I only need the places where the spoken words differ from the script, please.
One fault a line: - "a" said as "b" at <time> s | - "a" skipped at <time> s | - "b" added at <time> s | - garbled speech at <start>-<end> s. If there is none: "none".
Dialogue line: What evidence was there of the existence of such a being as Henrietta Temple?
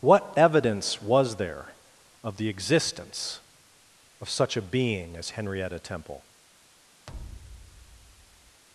none